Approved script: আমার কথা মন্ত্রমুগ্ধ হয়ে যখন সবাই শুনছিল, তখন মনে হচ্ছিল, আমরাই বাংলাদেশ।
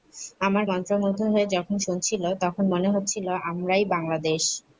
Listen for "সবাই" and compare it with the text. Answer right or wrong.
wrong